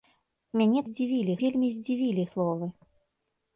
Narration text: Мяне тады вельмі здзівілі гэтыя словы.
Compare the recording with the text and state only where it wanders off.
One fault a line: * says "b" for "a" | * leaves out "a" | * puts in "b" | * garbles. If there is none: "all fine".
* says "здзівілі" for "тады"
* leaves out "гэтыя"